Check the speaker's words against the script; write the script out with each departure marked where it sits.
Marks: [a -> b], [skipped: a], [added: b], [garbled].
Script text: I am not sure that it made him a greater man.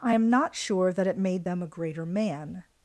I am not sure that it made [him -> them] a greater man.